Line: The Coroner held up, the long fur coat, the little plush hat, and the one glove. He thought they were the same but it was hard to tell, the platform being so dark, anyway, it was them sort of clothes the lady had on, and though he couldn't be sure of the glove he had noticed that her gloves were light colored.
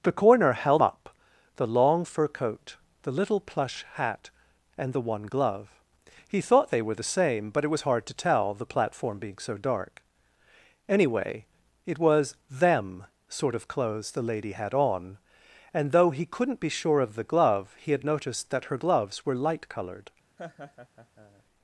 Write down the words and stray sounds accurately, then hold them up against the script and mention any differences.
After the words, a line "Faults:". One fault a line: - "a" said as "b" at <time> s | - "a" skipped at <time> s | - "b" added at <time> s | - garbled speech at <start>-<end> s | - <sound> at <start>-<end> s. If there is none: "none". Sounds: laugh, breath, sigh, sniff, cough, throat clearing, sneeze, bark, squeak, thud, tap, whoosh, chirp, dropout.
The Coroner held up, the long fur coat, the little plush hat, and the one glove. He thought they were the same but it was hard to tell, the platform being so dark, anyway, it was them sort of clothes the lady had on, and though he couldn't be sure of the glove he had noticed that her gloves were light colored.
Faults:
- laugh at 20.4-21.4 s